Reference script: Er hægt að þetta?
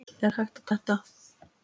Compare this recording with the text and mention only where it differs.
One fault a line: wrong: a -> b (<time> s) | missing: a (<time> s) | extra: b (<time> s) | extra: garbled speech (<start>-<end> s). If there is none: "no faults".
no faults